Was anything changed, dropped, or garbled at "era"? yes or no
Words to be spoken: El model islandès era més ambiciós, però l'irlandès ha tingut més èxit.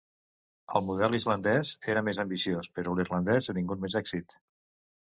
no